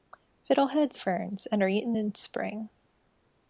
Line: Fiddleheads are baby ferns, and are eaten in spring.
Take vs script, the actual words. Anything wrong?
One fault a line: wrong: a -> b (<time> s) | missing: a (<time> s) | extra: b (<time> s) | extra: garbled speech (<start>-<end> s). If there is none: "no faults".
missing: are baby (1.0 s)